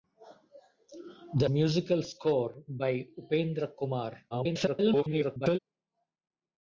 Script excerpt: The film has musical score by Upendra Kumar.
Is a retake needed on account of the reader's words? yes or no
yes